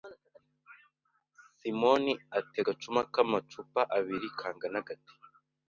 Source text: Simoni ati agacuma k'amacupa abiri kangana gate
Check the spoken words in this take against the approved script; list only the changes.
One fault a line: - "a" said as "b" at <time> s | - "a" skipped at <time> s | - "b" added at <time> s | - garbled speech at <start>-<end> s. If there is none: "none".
none